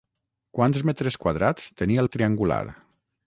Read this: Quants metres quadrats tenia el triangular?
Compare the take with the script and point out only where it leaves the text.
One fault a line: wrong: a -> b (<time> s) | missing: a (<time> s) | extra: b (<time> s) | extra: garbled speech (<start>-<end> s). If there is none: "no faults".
no faults